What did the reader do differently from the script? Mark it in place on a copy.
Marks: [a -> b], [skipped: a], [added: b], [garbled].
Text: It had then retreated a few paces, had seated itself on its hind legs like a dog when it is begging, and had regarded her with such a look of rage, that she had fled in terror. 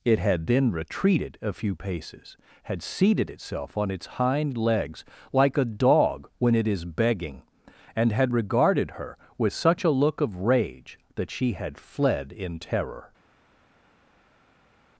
It had then retreated a few paces, had seated itself on its hind legs like a dog when it is begging, and had regarded her with such a look of rage, that she had fled in terror.